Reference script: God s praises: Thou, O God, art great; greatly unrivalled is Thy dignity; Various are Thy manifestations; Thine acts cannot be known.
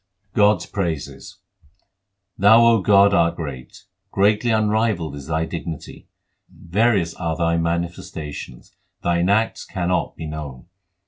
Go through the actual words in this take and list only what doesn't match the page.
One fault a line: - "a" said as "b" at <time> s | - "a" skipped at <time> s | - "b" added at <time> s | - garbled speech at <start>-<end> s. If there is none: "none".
none